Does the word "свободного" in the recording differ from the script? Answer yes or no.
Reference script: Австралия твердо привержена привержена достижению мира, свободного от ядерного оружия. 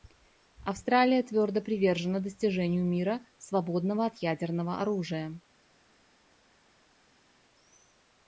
no